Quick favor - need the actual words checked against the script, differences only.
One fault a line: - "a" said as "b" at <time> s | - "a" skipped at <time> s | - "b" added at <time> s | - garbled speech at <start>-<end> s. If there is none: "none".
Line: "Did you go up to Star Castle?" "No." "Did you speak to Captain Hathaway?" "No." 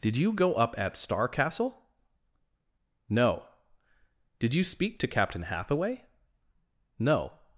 - "to" said as "at" at 0.8 s